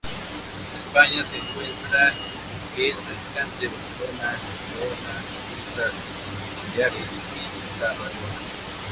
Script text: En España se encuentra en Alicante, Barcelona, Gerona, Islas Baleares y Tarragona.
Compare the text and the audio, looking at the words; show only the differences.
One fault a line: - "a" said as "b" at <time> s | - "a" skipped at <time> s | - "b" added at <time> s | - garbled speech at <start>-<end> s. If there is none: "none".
none